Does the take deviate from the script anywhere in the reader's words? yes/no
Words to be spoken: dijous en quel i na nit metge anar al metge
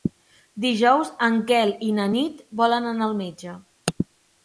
yes